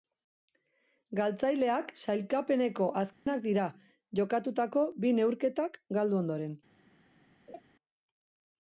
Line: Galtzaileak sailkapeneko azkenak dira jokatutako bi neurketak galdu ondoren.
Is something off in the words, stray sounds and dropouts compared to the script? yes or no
yes